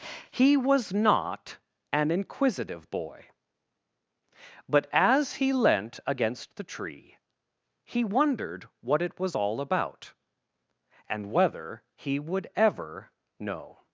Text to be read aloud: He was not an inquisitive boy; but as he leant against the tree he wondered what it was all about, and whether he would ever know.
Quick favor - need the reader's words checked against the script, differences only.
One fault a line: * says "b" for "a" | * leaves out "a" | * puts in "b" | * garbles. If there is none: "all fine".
all fine